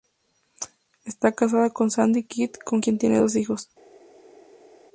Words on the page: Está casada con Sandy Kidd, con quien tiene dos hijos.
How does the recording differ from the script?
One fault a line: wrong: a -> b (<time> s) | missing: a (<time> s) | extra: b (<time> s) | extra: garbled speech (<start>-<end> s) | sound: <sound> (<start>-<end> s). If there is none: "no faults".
no faults